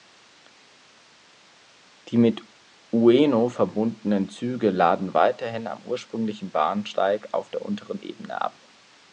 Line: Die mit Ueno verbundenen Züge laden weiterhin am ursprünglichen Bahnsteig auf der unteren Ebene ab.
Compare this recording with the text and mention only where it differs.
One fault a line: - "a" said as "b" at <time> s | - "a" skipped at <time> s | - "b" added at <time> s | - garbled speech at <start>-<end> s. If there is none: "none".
none